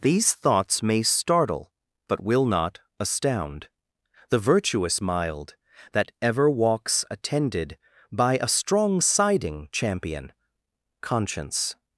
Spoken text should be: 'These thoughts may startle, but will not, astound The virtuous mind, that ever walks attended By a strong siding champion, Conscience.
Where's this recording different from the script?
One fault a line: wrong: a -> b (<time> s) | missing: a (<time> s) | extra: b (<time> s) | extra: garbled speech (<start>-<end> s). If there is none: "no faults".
wrong: mind -> mild (5.0 s)